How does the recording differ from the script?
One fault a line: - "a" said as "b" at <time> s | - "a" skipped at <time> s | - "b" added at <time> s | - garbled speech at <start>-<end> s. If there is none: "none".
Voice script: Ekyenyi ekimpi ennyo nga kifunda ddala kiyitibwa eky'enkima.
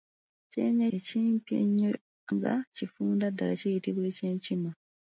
none